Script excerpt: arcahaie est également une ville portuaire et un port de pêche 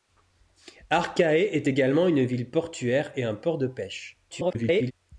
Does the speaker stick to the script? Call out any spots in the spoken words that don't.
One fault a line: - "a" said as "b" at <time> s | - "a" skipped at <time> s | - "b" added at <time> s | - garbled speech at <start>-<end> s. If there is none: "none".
- garbled speech at 4.3-4.9 s